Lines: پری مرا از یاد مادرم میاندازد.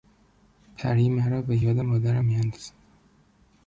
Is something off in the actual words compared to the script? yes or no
yes